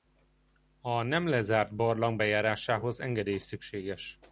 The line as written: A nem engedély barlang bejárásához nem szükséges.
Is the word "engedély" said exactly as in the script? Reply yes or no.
no